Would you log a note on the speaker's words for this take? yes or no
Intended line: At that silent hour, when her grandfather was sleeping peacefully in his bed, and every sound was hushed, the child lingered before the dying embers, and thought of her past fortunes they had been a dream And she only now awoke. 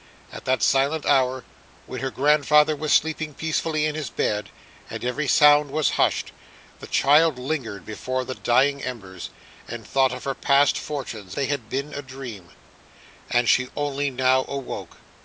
no